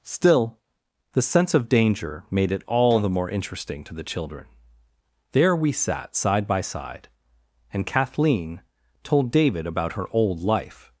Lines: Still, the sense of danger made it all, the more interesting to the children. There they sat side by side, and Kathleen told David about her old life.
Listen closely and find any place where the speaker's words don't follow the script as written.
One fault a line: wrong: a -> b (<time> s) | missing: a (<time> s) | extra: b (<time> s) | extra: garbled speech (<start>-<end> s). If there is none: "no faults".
wrong: they -> we (5.5 s)